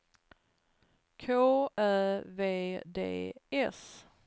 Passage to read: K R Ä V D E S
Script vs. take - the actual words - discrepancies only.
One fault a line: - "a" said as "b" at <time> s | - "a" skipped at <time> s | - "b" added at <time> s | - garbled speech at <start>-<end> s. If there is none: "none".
- "R" skipped at 1.2 s
- "E" skipped at 3.3 s